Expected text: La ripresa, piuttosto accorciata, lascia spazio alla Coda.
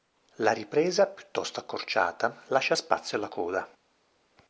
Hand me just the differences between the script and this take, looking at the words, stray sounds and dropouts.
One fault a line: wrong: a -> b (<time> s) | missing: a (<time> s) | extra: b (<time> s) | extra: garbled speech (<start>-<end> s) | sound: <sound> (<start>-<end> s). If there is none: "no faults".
no faults